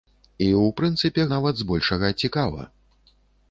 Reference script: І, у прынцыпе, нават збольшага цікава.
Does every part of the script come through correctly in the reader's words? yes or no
yes